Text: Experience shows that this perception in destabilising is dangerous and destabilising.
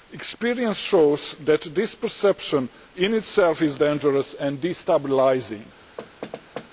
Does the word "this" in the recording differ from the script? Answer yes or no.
no